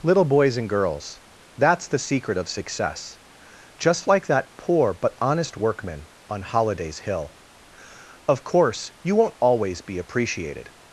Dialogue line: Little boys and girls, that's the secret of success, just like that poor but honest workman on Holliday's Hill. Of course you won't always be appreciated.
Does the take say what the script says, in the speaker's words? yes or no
yes